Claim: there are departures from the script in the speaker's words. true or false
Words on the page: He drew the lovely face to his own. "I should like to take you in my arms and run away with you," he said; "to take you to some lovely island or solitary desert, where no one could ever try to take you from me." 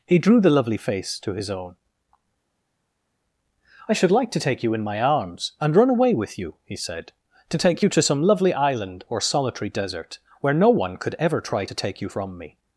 false